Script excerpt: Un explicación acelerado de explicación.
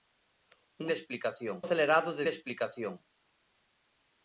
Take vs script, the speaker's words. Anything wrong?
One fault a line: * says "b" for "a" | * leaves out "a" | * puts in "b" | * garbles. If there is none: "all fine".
all fine